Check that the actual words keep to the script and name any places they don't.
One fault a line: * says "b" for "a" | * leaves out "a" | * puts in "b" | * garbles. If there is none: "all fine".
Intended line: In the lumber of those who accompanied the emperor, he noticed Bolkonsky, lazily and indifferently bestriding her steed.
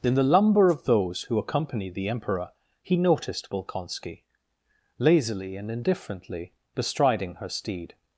all fine